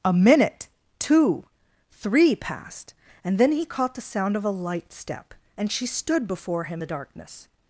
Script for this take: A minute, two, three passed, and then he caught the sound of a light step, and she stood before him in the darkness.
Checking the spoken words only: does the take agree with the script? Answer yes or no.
no